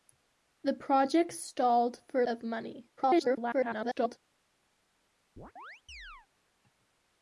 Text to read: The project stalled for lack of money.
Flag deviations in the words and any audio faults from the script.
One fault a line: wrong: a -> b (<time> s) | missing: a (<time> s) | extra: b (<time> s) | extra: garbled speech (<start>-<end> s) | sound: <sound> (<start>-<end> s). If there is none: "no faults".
missing: lack (2.2 s)
extra: garbled speech (3.0-4.2 s)
sound: chirp (5.4-6.3 s)